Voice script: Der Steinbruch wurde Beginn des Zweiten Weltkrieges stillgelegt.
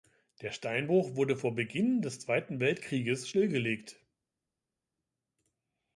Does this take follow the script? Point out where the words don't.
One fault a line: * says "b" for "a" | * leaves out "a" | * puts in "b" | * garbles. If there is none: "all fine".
* puts in "vor"